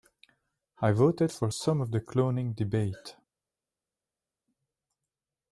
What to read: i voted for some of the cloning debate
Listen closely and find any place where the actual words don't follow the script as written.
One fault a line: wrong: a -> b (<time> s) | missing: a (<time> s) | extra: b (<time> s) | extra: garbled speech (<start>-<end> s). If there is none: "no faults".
no faults